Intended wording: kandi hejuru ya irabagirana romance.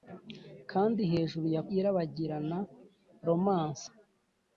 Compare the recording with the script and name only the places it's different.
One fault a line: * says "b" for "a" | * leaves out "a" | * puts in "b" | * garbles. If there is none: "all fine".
all fine